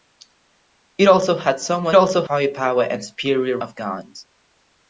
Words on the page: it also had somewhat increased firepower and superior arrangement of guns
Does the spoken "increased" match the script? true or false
false